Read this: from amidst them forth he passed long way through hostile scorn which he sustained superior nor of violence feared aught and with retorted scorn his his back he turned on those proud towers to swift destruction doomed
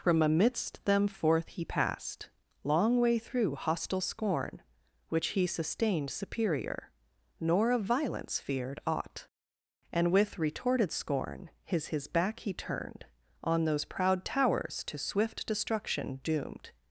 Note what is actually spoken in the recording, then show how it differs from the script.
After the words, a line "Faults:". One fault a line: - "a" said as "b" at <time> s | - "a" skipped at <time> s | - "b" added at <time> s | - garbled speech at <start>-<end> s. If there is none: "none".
from amidst them forth he passed long way through hostile scorn which he sustained superior nor of violence feared aught and with retorted scorn his his back he turned on those proud towers to swift destruction doomed
Faults:
none